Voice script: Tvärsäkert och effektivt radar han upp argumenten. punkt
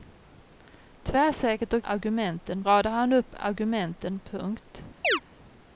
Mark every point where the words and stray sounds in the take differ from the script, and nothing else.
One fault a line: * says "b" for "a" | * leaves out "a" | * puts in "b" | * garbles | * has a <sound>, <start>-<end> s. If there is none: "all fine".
* says "argumenten" for "effektivt"
* has a chirp, 5.0-5.2 s